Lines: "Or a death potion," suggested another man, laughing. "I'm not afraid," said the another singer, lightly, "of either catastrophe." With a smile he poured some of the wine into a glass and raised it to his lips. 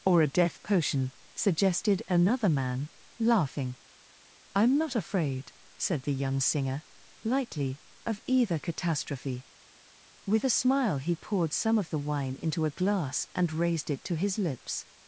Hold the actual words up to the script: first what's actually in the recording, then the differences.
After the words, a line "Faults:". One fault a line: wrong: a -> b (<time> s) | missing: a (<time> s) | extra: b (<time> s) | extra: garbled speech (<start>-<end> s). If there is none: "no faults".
"Or a death potion," suggested another man, laughing. "I'm not afraid," said the young singer, lightly, "of either catastrophe." With a smile he poured some of the wine into a glass and raised it to his lips.
Faults:
wrong: another -> young (6.1 s)